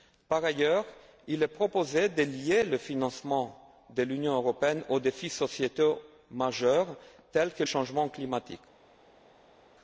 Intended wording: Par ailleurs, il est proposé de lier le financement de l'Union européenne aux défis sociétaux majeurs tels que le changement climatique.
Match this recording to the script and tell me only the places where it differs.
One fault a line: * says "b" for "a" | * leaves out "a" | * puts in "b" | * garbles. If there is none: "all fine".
* leaves out "le"